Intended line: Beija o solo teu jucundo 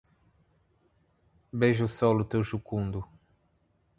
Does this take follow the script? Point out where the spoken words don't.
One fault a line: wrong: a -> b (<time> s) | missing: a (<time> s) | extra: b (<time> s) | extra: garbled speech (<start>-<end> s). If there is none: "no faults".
no faults